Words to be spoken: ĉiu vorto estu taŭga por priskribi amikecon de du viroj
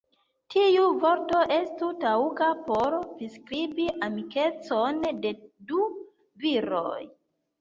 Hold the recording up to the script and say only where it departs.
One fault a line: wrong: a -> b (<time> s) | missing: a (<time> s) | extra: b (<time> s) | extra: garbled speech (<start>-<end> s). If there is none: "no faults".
wrong: ĉiu -> tiu (0.5 s)